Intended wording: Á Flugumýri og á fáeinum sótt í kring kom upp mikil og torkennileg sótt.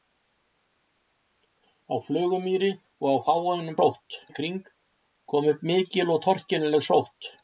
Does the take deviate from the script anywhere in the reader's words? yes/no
no